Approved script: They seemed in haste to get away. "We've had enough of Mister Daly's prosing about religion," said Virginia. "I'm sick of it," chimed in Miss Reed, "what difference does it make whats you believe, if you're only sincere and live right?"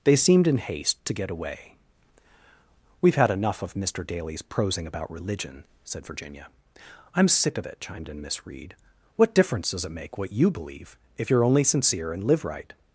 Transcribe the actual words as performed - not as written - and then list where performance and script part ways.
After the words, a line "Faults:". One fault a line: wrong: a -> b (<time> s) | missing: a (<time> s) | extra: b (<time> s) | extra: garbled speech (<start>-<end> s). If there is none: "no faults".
They seemed in haste to get away. "We've had enough of Mister Daly's prosing about religion," said Virginia. "I'm sick of it," chimed in Miss Reed, "what difference does it make what you believe, if you're only sincere and live right?"
Faults:
wrong: whats -> what (10.2 s)